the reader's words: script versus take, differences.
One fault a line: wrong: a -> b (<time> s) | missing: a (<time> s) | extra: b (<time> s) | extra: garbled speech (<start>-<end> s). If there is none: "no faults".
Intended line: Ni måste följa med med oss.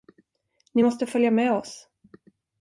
missing: med (1.5 s)